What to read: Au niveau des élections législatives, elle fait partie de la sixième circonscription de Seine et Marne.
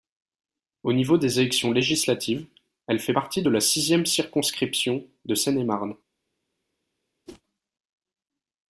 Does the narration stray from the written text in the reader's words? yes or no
no